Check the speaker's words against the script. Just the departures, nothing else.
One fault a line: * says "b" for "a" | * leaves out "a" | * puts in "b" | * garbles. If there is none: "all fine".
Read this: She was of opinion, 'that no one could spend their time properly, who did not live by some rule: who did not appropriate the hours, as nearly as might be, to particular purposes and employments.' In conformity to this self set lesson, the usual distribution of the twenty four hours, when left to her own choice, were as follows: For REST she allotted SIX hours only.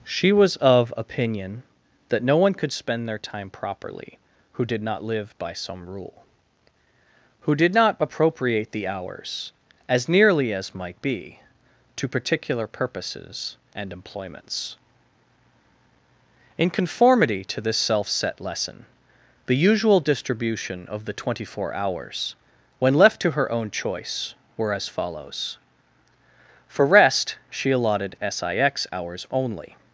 all fine